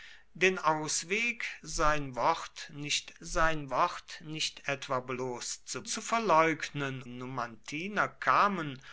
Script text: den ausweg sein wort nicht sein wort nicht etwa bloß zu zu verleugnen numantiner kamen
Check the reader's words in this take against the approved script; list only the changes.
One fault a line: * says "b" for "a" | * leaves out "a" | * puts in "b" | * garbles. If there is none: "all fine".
all fine